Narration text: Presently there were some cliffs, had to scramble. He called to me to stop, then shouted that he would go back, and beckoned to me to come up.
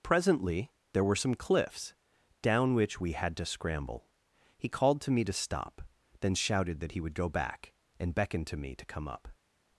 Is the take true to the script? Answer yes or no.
no